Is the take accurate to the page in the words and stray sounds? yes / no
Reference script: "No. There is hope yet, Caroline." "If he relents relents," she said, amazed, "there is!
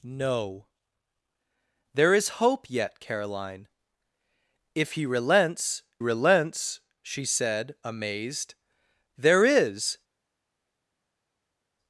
yes